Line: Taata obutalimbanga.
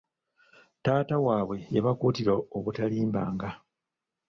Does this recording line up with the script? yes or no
no